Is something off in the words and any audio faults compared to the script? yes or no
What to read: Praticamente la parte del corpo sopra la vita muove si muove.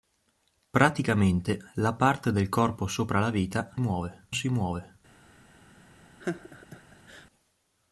yes